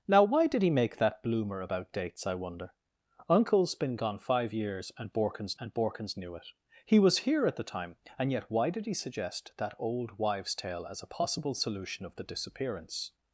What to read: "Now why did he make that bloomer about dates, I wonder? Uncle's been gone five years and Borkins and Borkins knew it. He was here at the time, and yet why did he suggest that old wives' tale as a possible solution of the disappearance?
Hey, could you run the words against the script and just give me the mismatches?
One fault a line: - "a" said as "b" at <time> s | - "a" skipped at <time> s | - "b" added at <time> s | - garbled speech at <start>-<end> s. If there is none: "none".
none